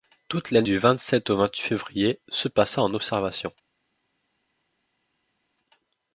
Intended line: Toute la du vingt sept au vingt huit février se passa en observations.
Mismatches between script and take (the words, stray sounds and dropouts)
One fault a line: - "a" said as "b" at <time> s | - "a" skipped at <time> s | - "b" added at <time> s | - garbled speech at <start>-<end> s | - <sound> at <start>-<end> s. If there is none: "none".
none